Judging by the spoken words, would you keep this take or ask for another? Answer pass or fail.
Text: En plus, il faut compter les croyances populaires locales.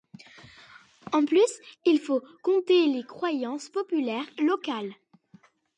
pass